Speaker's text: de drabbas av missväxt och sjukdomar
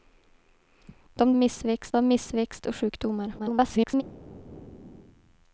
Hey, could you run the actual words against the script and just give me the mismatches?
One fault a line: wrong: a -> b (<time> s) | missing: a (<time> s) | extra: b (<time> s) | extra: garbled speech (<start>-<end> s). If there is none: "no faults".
wrong: drabbas -> missväxt (1.3 s)
extra: garbled speech (3.4-4.0 s)